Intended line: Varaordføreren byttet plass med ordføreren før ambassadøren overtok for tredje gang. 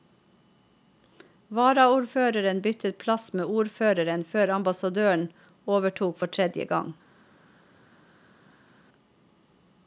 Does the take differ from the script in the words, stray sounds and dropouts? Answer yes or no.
no